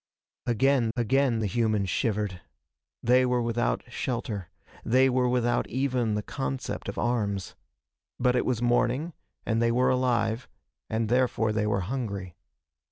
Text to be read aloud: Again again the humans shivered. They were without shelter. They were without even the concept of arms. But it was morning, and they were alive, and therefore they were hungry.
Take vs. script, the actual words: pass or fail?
pass